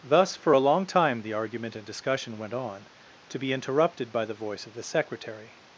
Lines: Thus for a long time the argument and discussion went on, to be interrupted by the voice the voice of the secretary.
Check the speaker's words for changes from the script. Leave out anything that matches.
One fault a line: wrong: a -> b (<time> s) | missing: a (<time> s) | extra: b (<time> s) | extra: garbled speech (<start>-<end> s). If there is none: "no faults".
missing: the voice (4.6 s)